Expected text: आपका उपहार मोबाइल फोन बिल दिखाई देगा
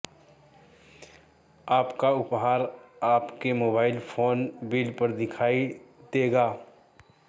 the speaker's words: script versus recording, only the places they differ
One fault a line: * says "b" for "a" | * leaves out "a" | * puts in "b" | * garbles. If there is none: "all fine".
* puts in "आपके"
* puts in "पर"